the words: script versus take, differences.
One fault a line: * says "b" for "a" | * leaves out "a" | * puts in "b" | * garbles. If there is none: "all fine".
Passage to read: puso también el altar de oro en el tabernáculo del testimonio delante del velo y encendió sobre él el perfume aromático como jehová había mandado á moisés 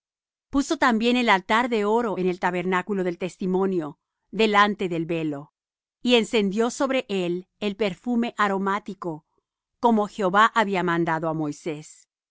all fine